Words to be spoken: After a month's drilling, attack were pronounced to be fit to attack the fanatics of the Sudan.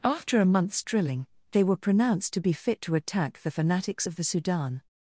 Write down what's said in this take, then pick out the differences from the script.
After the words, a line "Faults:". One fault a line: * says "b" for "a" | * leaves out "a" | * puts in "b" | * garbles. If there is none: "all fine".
After a month's drilling, they were pronounced to be fit to attack the fanatics of the Sudan.
Faults:
* says "they" for "attack"